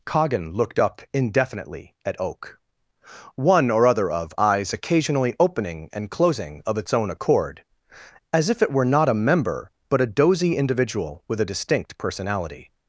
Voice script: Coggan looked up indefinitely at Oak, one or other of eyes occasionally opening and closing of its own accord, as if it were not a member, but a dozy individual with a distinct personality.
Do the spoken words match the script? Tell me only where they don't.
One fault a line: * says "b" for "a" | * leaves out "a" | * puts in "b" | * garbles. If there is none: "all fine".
all fine